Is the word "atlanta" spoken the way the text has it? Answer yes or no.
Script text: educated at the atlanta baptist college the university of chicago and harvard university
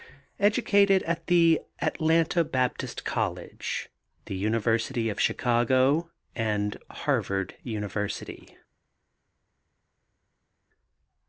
yes